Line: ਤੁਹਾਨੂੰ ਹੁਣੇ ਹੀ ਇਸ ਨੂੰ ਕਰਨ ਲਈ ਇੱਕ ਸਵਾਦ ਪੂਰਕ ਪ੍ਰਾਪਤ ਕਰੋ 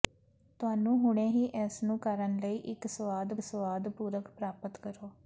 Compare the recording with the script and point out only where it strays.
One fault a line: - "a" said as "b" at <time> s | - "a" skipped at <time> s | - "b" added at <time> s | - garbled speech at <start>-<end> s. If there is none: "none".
- "ਸਵਾਦ" added at 3.4 s